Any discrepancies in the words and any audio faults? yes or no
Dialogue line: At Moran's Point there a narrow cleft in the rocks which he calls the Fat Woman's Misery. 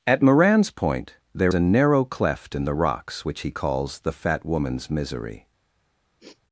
yes